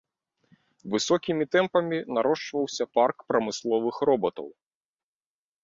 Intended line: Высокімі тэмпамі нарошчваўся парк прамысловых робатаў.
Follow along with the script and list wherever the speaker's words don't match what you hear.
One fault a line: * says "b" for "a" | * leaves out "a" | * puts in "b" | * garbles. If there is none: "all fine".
all fine